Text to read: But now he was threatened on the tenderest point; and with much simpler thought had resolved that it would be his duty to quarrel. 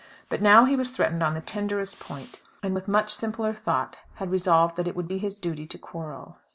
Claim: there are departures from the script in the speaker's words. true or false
false